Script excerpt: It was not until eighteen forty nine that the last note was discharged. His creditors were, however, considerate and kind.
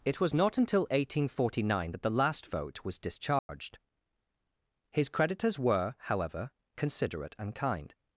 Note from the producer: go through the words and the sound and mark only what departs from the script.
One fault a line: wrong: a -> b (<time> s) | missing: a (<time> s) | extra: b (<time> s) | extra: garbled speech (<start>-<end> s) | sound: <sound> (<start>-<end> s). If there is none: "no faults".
wrong: note -> vote (2.5 s)
sound: dropout (3.4-3.5 s)